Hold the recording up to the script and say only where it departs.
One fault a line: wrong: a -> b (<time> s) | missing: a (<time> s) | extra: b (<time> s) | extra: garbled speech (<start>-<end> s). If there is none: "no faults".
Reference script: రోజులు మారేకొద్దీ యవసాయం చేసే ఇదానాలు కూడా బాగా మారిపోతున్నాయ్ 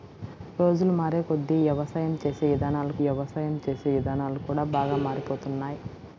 extra: యవసాయం చేసే ఇదానాలు (3.0 s)